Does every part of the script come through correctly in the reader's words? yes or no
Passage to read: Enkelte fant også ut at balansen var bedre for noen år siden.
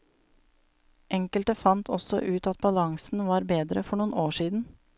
yes